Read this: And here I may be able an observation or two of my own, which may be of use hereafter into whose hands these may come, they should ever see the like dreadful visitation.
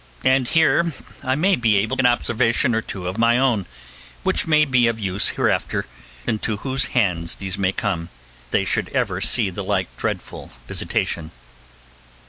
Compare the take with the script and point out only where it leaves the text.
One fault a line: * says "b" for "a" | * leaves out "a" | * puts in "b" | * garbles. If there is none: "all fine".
all fine